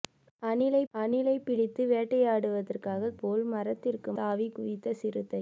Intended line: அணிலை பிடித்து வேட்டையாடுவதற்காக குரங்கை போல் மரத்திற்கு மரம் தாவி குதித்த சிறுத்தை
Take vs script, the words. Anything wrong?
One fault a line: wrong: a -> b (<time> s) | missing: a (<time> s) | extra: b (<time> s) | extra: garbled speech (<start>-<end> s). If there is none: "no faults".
extra: அணிலை (0.9 s)
missing: குரங்கை (3.1 s)
missing: மரம் (4.1 s)